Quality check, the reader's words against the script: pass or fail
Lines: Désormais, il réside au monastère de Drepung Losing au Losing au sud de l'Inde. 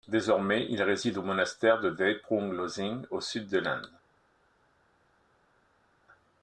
fail